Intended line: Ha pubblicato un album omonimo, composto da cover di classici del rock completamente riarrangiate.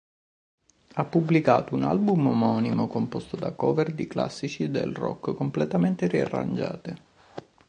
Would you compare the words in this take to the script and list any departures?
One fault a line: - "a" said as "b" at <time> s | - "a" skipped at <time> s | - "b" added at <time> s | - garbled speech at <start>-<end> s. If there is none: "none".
none